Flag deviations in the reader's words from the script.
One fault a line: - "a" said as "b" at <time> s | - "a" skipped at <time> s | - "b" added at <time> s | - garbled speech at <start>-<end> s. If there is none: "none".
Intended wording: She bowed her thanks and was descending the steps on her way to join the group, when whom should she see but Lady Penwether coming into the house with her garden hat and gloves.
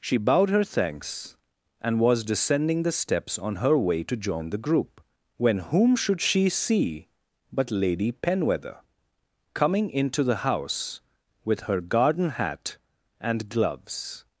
none